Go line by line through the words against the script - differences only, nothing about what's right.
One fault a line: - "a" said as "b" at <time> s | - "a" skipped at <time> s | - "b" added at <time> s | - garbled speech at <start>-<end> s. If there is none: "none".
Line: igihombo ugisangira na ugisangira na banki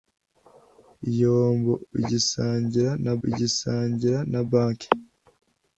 none